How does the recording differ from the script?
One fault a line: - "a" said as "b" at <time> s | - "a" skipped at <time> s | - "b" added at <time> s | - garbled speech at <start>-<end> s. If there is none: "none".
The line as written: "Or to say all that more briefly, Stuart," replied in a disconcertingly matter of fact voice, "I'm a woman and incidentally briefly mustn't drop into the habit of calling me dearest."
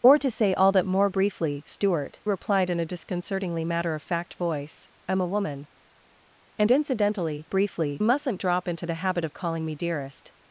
none